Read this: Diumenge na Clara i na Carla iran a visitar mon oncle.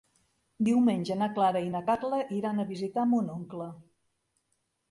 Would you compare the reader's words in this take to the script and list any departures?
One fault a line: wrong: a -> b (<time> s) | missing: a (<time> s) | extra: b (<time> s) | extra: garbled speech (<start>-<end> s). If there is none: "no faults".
no faults